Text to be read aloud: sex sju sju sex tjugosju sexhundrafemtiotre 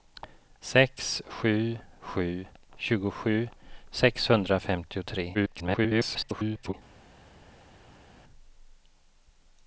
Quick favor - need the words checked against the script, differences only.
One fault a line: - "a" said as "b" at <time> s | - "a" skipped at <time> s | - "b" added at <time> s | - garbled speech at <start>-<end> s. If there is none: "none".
- "sex" skipped at 2.5 s
- garbled speech at 5.3-6.7 s